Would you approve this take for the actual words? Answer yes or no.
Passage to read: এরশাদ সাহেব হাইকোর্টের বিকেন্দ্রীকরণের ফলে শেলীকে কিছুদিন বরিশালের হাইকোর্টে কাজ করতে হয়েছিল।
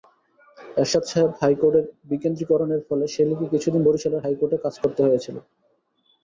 yes